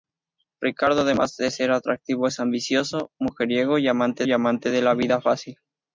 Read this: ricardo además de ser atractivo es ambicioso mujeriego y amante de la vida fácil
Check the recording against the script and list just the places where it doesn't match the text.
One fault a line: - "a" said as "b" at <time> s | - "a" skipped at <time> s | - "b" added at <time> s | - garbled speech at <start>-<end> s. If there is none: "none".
- "y amante" added at 4.2 s